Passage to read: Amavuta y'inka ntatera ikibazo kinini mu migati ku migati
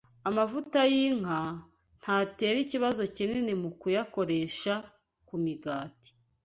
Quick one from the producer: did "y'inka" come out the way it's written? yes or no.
yes